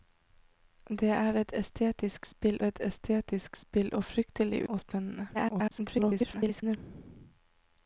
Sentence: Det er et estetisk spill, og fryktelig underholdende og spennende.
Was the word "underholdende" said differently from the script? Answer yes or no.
yes